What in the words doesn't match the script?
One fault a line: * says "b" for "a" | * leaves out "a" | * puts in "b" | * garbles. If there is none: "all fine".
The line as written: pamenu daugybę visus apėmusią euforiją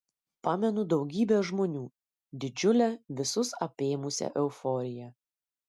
* puts in "žmonių didžiulę"